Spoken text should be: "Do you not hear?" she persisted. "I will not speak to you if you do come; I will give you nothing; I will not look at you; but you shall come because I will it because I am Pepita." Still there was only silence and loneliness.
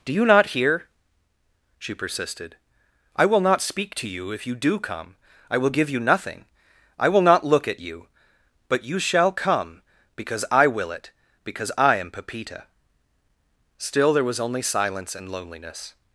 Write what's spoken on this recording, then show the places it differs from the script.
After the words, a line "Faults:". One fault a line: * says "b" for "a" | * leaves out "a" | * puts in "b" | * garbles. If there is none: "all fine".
"Do you not hear?" she persisted. "I will not speak to you if you do come; I will give you nothing; I will not look at you; but you shall come because I will it because I am Pepita." Still there was only silence and loneliness.
Faults:
all fine